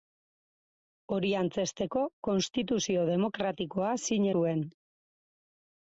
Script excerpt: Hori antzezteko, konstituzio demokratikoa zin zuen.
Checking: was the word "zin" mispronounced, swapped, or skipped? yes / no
no